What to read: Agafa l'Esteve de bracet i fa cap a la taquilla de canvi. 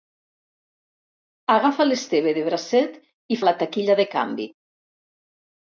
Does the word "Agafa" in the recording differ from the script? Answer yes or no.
no